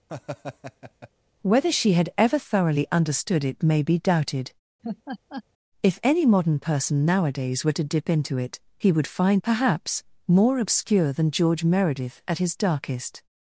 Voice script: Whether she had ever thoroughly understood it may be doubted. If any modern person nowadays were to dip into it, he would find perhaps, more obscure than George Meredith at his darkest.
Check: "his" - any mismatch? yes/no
no